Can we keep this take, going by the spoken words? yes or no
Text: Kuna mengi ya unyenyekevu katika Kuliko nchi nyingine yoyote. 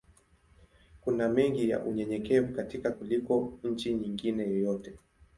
yes